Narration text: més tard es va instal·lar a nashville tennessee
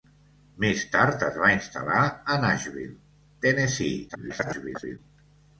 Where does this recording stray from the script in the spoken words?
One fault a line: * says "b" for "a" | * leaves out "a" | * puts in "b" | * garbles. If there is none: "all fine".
* garbles